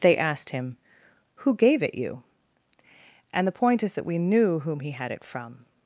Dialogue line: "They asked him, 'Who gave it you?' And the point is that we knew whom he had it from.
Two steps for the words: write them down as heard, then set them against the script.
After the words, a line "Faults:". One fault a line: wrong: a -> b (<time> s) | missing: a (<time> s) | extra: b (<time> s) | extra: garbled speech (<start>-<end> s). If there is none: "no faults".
"They asked him, 'Who gave it you?' And the point is that we knew whom he had it from.
Faults:
no faults